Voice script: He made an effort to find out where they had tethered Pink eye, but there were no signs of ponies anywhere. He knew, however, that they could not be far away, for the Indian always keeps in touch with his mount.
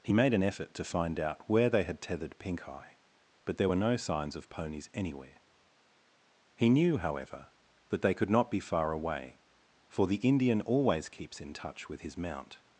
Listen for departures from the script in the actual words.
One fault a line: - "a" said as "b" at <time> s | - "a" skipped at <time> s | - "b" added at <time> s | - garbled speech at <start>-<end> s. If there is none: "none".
none